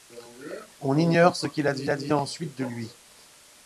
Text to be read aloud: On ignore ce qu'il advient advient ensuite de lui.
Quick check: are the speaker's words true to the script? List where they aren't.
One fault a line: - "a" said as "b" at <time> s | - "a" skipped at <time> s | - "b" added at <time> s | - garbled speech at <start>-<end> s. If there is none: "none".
none